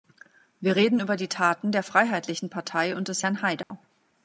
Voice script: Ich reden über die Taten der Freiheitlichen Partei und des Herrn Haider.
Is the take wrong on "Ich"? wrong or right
wrong